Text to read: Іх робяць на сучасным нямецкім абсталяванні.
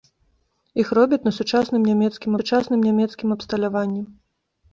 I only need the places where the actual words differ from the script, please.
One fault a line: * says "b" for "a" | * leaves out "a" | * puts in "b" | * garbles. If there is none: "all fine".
* puts in "сучасным нямецкім"